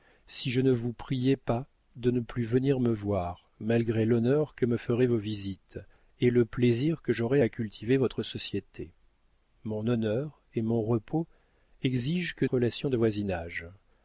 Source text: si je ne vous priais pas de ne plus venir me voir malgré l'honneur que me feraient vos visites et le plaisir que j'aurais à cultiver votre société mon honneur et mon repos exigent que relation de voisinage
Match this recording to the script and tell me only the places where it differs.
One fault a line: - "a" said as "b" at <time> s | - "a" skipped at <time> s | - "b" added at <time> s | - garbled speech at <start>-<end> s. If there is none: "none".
none